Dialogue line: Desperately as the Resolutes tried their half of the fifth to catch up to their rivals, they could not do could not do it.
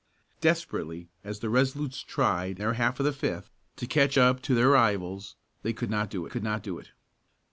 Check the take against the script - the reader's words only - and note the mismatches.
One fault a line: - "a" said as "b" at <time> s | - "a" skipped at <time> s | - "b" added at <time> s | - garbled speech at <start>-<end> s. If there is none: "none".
none